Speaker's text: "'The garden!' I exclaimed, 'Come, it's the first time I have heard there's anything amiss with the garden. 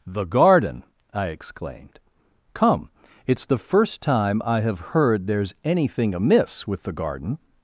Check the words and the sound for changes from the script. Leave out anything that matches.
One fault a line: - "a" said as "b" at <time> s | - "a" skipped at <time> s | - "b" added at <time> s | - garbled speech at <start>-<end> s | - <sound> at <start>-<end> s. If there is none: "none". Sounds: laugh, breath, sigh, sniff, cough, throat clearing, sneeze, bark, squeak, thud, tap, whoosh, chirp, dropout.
none